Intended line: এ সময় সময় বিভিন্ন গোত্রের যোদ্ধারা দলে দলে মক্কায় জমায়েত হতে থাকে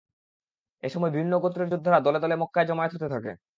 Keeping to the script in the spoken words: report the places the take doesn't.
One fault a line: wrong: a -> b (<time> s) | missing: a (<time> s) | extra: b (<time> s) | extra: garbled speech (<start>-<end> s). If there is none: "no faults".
missing: সময় (1.1 s)